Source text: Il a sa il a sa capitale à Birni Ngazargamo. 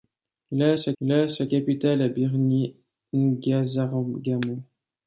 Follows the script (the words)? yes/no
yes